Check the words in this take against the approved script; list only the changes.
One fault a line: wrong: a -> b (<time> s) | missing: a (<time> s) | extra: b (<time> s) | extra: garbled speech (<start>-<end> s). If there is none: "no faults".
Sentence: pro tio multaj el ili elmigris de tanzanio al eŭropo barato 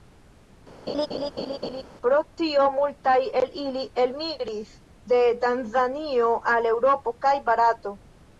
extra: kaj (7.3 s)